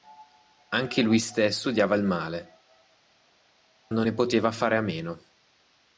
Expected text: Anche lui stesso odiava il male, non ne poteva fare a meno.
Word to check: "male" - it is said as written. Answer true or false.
true